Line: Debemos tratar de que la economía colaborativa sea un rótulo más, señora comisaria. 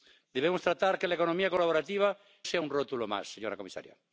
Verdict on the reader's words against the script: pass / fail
pass